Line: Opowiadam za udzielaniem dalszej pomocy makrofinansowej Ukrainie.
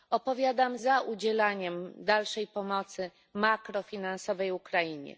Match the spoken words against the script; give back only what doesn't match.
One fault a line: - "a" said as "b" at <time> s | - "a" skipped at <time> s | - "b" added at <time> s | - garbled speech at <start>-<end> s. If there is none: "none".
none